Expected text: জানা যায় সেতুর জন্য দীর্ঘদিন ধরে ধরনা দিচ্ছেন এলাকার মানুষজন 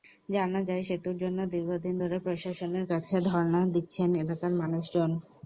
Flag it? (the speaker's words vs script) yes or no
yes